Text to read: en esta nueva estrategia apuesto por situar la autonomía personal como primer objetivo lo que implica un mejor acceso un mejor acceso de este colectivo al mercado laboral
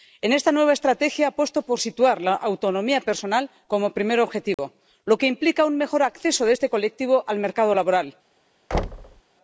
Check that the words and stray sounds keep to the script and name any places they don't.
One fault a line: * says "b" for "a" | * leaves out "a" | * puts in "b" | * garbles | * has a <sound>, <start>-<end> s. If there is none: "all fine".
* has a dropout, 4.5-4.6 s
* leaves out "un mejor acceso"
* has a thud, 8.7-9.2 s